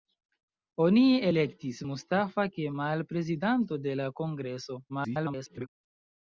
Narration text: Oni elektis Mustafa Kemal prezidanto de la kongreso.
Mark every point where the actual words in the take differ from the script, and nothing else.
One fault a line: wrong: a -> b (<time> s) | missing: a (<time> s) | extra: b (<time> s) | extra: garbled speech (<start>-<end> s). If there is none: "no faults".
extra: garbled speech (4.9-5.7 s)